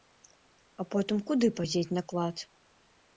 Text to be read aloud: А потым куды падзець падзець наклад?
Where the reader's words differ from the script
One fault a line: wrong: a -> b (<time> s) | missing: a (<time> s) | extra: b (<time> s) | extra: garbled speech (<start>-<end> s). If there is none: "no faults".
missing: падзець (1.9 s)